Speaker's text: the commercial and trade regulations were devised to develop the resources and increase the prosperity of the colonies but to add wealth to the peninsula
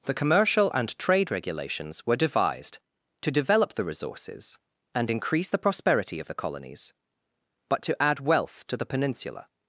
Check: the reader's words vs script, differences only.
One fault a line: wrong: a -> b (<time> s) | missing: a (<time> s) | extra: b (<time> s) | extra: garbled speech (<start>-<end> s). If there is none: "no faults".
no faults